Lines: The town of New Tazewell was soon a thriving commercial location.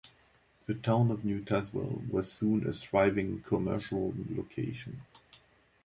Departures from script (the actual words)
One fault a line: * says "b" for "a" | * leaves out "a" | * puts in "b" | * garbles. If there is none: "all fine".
all fine